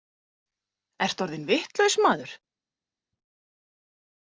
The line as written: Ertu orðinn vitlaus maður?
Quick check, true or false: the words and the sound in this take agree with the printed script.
true